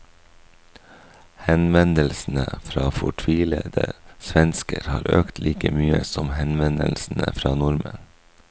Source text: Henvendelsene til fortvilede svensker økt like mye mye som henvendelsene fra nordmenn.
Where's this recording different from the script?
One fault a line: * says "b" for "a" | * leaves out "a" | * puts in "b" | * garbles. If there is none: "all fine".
* says "fra" for "til"
* puts in "har"
* leaves out "mye"